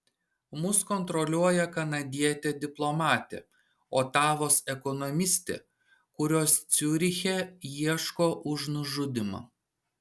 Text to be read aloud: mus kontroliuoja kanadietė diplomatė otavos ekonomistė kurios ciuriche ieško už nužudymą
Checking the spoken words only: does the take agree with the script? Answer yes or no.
yes